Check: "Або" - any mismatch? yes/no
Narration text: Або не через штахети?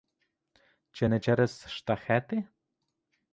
yes